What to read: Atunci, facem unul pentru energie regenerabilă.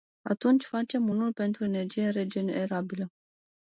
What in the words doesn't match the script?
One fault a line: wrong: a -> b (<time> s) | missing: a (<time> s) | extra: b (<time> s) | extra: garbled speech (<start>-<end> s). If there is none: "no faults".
no faults